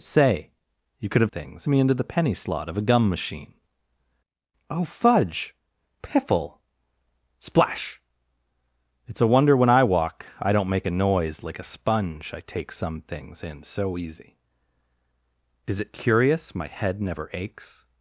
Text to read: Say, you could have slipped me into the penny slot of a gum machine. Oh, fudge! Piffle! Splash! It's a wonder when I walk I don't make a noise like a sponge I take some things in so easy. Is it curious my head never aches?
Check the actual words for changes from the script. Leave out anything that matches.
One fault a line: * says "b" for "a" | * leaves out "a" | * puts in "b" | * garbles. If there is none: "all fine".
* says "things" for "slipped"